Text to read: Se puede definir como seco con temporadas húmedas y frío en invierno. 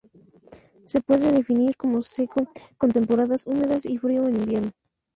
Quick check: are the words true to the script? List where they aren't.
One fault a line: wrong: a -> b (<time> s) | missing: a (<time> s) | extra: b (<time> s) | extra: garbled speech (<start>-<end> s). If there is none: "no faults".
no faults